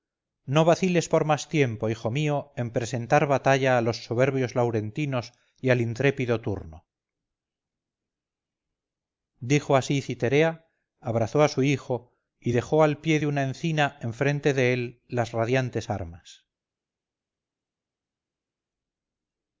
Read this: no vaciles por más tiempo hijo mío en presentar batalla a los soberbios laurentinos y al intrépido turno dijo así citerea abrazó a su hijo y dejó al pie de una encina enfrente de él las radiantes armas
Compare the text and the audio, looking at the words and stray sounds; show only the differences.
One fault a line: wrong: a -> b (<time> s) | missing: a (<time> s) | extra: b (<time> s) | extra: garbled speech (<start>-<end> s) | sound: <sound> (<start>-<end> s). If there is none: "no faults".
no faults